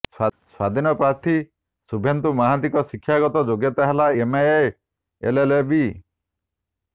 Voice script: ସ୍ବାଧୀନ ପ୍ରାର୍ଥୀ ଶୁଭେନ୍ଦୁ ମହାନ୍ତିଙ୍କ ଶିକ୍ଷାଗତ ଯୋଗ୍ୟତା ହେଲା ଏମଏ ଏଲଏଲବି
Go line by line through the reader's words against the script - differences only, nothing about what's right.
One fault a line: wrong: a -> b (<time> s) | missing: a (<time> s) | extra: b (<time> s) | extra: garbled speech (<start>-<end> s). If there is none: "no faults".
no faults